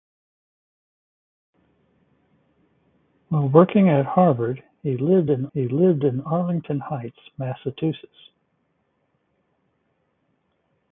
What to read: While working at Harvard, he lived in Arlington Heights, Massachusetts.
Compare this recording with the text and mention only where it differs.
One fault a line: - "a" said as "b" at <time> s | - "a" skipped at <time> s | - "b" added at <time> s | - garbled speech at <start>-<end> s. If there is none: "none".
- "he lived in" added at 5.5 s